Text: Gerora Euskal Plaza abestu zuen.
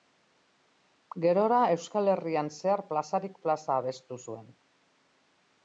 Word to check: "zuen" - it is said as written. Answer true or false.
true